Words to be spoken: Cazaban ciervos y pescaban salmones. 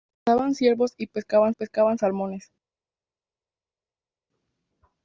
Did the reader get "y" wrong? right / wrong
right